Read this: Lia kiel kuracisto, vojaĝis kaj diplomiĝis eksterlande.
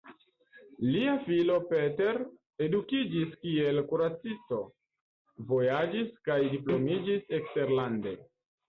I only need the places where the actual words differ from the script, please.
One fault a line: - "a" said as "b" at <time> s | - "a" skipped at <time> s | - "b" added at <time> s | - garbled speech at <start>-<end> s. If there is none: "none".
- "filo Peter edukiĝis" added at 1.3 s